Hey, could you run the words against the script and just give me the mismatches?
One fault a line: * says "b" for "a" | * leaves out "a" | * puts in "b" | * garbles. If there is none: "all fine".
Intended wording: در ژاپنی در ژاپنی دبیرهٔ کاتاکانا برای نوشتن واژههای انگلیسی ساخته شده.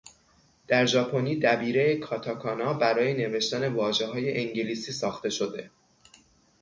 * leaves out "در ژاپنی"